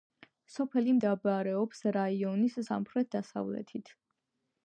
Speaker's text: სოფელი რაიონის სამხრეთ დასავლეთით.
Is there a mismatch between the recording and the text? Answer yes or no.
yes